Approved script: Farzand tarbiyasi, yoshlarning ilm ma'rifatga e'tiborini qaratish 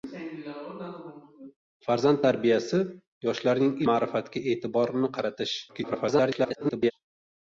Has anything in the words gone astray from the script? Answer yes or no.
yes